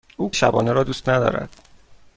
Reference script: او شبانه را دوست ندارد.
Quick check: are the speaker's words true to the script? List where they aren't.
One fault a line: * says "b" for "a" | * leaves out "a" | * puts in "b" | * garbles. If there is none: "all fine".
all fine